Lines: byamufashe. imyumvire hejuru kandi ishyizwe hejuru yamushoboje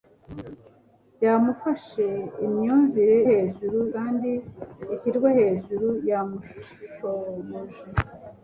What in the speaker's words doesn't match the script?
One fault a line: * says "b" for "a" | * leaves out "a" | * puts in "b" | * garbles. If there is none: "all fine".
all fine